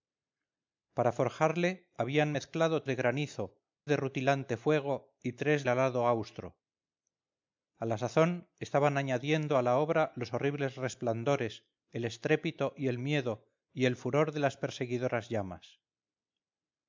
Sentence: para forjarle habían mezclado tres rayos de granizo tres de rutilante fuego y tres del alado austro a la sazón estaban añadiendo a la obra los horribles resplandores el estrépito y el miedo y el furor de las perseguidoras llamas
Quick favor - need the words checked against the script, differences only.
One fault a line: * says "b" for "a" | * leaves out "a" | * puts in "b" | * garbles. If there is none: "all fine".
* leaves out "tres rayos"
* leaves out "tres"
* leaves out "del"